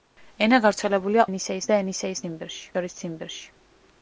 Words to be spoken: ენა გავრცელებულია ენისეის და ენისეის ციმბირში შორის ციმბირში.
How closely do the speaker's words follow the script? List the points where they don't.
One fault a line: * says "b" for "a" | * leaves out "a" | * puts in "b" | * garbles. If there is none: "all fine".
all fine